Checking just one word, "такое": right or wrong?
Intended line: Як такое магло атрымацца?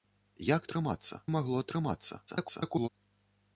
wrong